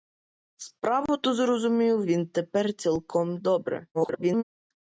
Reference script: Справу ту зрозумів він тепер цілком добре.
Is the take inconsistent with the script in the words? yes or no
yes